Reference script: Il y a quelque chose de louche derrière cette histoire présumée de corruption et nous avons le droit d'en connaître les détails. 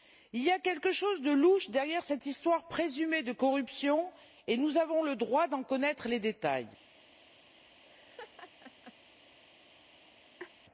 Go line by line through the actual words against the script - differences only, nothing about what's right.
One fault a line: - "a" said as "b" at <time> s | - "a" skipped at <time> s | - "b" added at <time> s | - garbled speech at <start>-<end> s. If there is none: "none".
none